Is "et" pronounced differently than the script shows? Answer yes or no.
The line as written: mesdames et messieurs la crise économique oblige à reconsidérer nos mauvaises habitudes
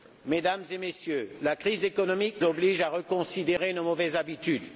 no